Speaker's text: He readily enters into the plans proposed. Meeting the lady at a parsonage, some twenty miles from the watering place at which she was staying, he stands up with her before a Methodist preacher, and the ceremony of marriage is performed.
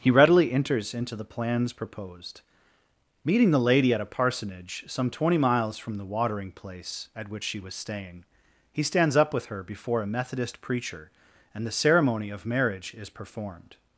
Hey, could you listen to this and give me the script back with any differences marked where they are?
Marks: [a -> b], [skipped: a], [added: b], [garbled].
He readily enters into the plans proposed. Meeting the lady at a parsonage, some twenty miles from the watering place at which she was staying, he stands up with her before a Methodist preacher, and the ceremony of marriage is performed.